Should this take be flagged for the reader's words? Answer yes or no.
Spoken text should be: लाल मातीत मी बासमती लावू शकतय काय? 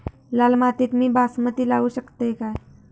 no